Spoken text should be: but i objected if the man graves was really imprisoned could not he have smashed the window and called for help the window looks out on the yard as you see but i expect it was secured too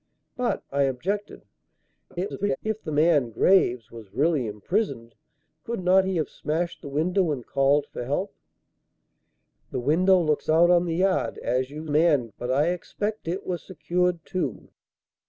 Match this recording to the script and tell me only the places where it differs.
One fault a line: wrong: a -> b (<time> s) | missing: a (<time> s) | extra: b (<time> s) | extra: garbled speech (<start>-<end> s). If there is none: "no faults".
extra: garbled speech (2.1-2.6 s)
wrong: see -> man (11.9 s)